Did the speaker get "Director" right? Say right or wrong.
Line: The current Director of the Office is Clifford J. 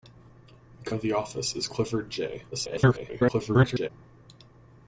wrong